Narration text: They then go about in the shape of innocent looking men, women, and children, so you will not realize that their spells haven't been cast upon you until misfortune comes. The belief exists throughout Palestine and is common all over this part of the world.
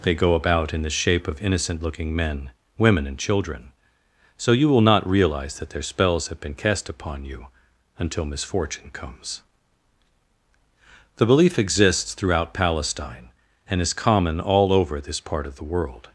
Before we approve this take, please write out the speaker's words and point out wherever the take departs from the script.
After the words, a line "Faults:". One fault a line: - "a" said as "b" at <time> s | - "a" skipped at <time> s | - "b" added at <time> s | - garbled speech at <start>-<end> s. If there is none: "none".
They go about in the shape of innocent looking men, women, and children, so you will not realize that their spells have been cast upon you until misfortune comes. The belief exists throughout Palestine and is common all over this part of the world.
Faults:
- "then" skipped at 0.1 s
- "haven't" said as "have" at 6.3 s